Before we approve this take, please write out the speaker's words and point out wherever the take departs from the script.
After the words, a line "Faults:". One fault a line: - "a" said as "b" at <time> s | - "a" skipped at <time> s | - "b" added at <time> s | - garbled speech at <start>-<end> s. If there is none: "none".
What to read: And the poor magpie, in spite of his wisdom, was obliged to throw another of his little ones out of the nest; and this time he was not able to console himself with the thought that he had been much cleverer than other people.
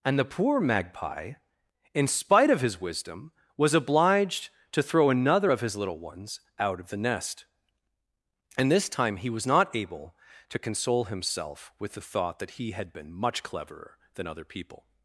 And the poor magpie, in spite of his wisdom, was obliged to throw another of his little ones out of the nest; and this time he was not able to console himself with the thought that he had been much cleverer than other people.
Faults:
none